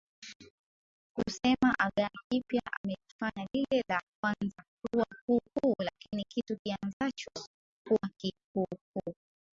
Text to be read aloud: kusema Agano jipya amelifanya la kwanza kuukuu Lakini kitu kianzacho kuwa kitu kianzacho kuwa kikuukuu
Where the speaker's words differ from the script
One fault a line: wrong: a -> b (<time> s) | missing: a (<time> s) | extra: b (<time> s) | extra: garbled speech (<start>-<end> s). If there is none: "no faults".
extra: lile (3.5 s)
extra: kuwa (4.9 s)
missing: kitu kianzacho kuwa (8.1 s)